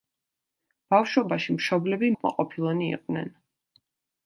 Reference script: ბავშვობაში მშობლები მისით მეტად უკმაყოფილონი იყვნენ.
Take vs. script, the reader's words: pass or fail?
fail